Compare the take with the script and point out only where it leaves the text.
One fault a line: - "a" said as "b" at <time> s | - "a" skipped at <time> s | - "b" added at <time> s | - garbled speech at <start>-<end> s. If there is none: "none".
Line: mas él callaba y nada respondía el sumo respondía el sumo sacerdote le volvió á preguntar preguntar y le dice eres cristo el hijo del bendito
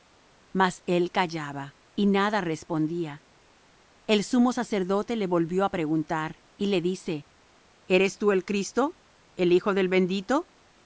- "respondía el sumo" skipped at 4.5 s
- "preguntar" skipped at 6.4 s
- "tú el" added at 8.2 s